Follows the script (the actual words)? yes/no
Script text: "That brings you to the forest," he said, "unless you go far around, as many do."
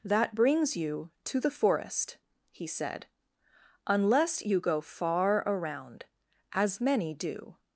yes